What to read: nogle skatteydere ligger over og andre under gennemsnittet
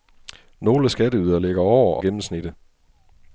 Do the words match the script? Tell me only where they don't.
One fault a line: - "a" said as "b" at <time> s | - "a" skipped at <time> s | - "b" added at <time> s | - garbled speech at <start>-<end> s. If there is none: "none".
- "og andre under" skipped at 2.0 s